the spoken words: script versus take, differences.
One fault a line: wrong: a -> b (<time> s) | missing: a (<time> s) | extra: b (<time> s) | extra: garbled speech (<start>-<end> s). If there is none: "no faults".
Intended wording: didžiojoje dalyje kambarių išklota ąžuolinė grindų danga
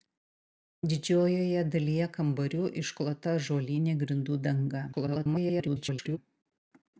extra: garbled speech (4.9-6.2 s)